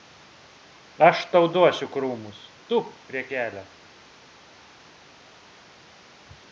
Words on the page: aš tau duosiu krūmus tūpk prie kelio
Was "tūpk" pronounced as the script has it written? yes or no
yes